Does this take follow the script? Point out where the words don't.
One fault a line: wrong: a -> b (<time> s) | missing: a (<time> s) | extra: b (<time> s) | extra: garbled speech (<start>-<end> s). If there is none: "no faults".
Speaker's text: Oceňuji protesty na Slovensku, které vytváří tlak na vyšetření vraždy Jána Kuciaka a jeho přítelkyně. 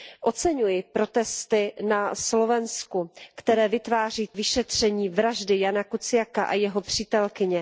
missing: tlak na (4.3 s)